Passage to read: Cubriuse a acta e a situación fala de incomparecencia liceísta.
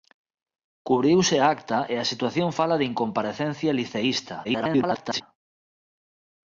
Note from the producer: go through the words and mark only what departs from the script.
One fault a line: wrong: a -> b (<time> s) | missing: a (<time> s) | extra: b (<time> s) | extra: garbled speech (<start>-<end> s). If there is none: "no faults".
extra: garbled speech (4.4-5.2 s)